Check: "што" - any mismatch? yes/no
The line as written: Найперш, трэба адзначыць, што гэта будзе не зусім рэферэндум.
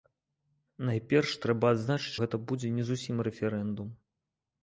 yes